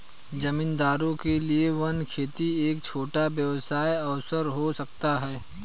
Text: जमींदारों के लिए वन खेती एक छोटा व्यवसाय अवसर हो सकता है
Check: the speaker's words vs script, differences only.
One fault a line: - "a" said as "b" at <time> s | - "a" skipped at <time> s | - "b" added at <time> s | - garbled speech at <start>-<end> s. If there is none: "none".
none